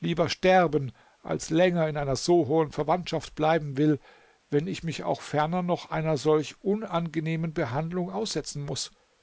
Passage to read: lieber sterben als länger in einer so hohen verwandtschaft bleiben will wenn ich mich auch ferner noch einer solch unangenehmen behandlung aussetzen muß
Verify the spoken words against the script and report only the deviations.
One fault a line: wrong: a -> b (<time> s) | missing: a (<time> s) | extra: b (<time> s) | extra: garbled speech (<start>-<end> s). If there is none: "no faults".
no faults